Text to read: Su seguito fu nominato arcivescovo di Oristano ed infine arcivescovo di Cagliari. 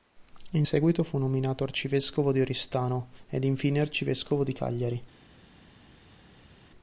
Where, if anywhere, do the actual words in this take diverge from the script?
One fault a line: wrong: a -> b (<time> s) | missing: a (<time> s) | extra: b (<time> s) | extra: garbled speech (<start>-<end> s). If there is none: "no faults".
wrong: Su -> In (0.5 s)